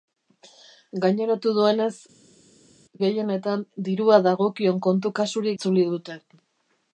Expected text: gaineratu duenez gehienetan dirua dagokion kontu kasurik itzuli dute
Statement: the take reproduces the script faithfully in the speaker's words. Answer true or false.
true